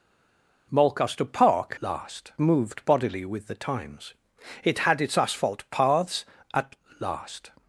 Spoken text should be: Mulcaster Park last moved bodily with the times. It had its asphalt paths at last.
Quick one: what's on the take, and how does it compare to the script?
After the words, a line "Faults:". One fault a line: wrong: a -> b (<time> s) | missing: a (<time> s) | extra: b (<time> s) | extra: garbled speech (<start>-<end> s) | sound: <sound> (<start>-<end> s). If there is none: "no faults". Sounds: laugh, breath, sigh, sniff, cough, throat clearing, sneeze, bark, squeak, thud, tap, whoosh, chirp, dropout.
Mulcaster Park last moved bodily with the times. It had its asphalt paths at last.
Faults:
no faults